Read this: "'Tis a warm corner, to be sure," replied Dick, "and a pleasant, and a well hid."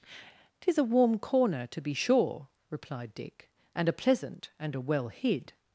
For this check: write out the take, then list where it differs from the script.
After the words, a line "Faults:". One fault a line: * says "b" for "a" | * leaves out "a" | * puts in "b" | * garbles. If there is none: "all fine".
"'Tis a warm corner, to be sure," replied Dick, "and a pleasant, and a well hid."
Faults:
all fine